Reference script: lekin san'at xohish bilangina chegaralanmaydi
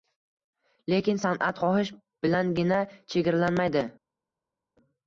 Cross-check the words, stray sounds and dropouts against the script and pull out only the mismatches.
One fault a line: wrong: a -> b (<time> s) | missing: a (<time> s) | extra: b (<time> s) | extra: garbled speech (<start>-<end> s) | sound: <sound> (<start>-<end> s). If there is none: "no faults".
no faults